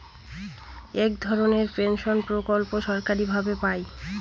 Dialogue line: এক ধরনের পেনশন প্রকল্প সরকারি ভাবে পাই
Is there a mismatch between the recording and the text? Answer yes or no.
no